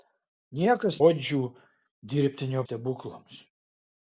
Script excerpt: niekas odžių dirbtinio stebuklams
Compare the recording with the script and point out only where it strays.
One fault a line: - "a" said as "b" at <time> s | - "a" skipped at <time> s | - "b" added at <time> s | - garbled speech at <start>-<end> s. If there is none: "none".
none